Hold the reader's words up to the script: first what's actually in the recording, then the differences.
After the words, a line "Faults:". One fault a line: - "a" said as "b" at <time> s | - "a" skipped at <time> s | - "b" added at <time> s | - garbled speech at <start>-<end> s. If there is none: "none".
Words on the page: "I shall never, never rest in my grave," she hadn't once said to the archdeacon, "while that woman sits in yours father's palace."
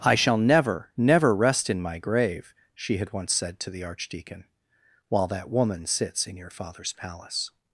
"I shall never, never rest in my grave," she had once said to the archdeacon, "while that woman sits in your father's palace."
Faults:
- "hadn't" said as "had" at 3.0 s
- "yours" said as "your" at 6.4 s